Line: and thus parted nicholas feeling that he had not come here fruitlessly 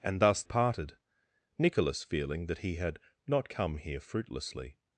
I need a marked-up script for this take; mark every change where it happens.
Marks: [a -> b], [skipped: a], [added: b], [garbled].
and thus parted nicholas feeling that he had not come here fruitlessly